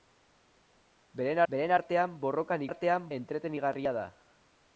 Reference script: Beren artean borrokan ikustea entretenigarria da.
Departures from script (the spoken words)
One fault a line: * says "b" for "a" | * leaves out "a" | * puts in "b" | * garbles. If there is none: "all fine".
* puts in "beren"
* says "artean" for "ikustea"